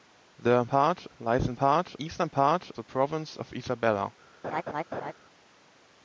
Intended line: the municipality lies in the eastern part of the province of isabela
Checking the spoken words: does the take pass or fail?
fail